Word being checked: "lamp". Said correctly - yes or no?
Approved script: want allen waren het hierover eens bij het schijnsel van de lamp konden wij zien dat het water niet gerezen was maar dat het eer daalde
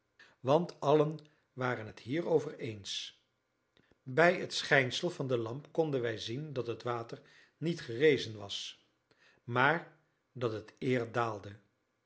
yes